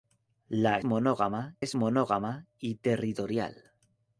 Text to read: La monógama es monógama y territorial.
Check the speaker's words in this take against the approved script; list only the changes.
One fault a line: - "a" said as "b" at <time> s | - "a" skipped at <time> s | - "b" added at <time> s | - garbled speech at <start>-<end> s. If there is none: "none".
none